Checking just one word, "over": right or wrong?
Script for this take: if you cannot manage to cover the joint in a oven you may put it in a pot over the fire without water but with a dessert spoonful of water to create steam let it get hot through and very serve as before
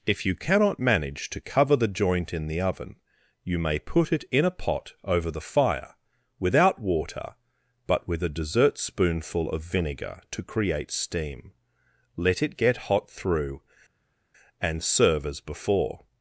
right